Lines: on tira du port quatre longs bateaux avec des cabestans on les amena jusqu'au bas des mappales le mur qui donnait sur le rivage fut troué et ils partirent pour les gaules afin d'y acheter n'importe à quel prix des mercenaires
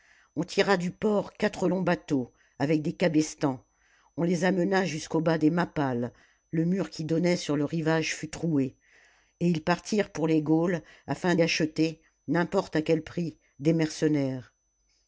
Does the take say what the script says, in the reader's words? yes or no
no